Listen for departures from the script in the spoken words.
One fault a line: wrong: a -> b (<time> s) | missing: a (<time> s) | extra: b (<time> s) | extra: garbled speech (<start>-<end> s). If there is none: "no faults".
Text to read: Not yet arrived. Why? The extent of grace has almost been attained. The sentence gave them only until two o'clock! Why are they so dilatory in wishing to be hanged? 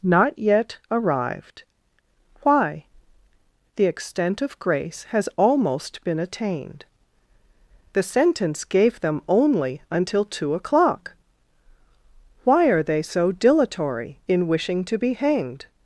no faults